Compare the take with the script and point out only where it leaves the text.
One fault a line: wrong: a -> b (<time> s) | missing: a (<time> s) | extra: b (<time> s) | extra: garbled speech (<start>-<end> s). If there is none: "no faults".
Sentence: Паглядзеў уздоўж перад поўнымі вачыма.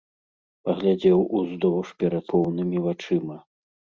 no faults